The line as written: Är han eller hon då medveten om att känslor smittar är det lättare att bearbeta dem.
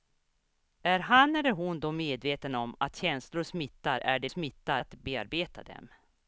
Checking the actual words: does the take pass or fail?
fail